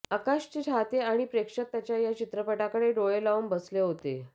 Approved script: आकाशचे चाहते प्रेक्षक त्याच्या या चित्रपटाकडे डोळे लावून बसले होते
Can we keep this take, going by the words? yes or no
no